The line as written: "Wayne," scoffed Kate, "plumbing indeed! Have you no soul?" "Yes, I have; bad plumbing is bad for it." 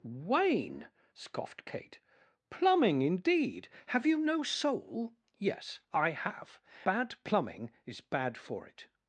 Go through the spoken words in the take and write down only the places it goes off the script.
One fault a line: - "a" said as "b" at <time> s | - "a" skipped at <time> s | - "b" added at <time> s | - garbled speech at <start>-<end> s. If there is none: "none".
none